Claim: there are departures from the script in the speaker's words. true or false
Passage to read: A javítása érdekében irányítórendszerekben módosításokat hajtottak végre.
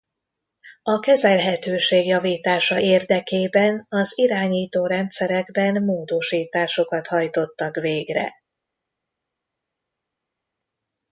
true